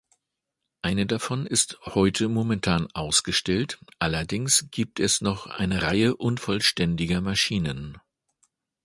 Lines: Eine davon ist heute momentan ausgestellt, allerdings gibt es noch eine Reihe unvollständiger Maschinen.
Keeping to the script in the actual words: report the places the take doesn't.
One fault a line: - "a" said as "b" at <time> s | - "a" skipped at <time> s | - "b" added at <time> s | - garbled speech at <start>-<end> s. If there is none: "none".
none